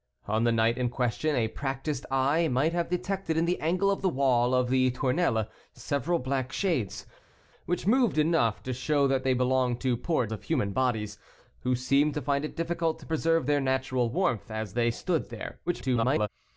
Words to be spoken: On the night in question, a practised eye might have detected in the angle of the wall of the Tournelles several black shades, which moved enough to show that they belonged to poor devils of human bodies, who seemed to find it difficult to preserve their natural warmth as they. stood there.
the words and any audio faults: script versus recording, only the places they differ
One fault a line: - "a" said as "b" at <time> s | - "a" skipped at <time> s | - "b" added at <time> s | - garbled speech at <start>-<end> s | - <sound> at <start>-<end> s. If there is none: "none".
- "devils" skipped at 10.3 s
- garbled speech at 15.7-16.3 s